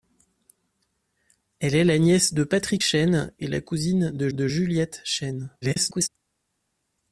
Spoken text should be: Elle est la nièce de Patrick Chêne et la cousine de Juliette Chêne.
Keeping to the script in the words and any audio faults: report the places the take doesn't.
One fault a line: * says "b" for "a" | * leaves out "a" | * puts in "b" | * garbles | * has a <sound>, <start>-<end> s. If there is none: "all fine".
* puts in "de"
* garbles